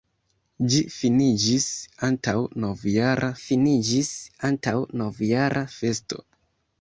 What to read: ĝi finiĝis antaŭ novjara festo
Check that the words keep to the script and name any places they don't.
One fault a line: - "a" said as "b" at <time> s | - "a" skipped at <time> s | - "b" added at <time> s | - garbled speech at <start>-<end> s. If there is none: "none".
- "finiĝis antaŭ novjara" added at 3.4 s